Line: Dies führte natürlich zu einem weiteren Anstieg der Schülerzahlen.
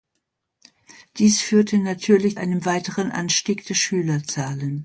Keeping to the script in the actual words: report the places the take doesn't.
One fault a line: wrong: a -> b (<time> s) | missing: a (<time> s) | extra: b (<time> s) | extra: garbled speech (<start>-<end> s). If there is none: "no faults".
missing: zu (2.4 s)